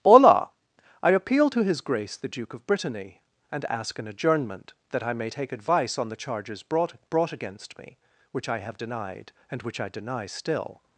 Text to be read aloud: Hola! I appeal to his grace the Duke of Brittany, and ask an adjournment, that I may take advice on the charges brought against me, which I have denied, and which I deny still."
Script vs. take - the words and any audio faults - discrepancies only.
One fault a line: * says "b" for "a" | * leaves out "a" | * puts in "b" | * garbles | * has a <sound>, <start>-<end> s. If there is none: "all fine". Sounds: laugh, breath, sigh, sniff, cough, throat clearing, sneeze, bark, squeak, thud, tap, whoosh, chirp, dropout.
* puts in "brought"